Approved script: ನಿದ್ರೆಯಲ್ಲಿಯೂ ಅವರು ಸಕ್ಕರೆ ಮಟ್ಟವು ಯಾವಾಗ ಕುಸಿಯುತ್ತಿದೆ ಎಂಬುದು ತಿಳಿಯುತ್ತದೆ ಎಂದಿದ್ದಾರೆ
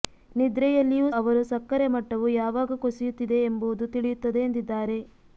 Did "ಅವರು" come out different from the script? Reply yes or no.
no